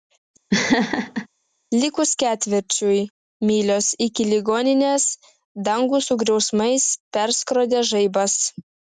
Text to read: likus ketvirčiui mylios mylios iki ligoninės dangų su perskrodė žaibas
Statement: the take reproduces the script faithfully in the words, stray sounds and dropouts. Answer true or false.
false